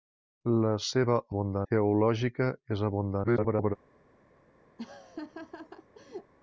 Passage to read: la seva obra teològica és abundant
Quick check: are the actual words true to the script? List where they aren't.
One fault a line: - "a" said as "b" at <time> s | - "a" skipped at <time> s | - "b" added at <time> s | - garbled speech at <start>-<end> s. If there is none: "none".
- "obra" said as "abundant" at 1.3 s
- garbled speech at 3.2-3.8 s